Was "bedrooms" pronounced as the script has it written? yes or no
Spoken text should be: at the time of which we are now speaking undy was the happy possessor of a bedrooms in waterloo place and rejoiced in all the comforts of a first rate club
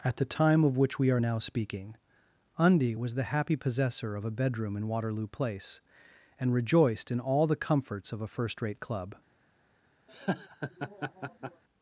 no